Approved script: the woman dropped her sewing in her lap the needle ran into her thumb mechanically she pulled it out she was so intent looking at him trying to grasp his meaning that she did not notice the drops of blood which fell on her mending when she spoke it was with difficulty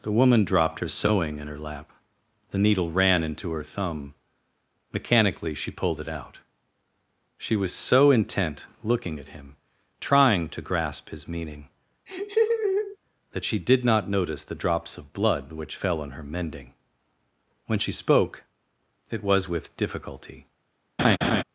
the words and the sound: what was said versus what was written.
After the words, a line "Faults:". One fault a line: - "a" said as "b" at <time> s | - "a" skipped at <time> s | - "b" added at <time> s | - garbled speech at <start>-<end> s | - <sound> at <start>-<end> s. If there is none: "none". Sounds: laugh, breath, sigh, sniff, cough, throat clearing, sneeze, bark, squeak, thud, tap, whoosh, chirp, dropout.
the woman dropped her sewing in her lap the needle ran into her thumb mechanically she pulled it out she was so intent looking at him trying to grasp his meaning that she did not notice the drops of blood which fell on her mending when she spoke it was with difficulty
Faults:
- laugh at 12.1-13.0 s
- laugh at 21.0-21.4 s